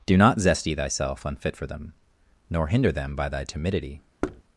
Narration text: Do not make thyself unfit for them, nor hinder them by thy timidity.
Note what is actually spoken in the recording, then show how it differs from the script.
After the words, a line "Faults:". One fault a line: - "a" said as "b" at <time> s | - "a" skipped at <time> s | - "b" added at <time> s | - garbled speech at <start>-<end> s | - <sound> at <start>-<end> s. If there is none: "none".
Do not zesty thyself unfit for them, nor hinder them by thy timidity.
Faults:
- "make" said as "zesty" at 0.4 s
- thud at 4.2-4.4 s